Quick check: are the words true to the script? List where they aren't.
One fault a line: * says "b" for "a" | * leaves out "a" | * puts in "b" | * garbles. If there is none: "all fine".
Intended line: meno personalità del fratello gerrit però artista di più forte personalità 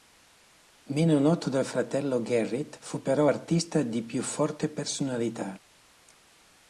* says "noto" for "personalità"
* puts in "fu"